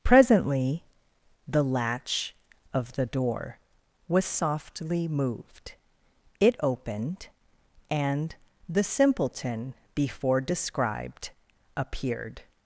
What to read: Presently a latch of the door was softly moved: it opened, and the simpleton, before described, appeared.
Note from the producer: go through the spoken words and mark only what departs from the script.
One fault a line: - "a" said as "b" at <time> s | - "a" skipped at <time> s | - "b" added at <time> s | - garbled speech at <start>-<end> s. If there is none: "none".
- "a" said as "the" at 1.5 s